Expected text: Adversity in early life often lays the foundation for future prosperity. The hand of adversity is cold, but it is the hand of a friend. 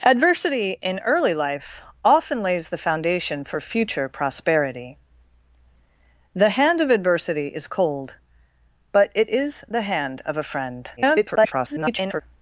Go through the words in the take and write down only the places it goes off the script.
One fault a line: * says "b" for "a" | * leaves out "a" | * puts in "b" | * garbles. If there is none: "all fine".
* garbles